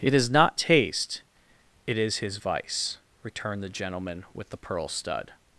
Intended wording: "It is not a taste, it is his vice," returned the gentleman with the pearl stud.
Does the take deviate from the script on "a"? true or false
true